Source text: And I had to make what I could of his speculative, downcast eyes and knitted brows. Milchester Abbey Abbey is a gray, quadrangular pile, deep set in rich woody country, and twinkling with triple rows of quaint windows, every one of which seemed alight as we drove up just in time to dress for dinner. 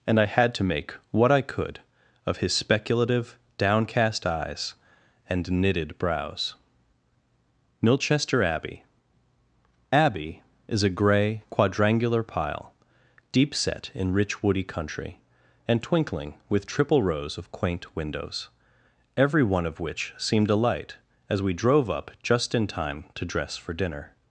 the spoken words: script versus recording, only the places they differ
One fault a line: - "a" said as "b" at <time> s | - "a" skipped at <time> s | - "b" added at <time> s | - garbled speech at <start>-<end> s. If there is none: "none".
none